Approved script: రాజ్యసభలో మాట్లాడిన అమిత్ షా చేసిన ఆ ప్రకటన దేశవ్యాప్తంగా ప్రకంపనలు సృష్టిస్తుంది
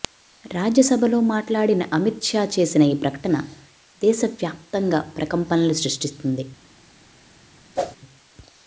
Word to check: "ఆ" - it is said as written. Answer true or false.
false